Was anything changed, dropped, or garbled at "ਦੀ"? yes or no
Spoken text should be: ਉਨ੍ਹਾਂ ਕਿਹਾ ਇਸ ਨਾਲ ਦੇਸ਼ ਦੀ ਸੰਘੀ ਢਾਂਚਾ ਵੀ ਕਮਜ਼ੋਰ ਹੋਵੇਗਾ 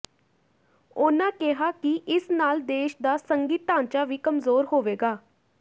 yes